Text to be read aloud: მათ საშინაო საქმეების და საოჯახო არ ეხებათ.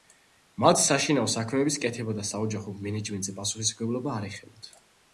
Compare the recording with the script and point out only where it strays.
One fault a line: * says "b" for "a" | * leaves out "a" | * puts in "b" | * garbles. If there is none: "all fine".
* puts in "კეთება"
* puts in "მენეჯმენტზე პასუხისმგებლობა"